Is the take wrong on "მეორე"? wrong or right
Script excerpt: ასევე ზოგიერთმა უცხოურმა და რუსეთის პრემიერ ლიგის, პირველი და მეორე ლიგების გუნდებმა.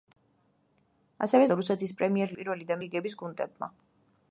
wrong